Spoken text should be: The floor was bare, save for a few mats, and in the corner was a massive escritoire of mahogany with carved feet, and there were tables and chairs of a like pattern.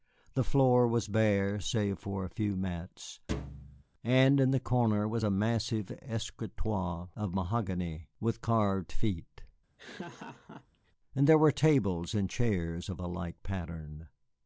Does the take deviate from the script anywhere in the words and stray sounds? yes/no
yes